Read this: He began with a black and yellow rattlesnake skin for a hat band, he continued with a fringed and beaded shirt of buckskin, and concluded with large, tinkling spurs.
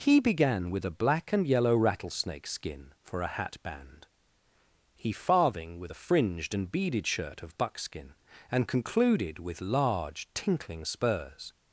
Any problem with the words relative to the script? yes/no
yes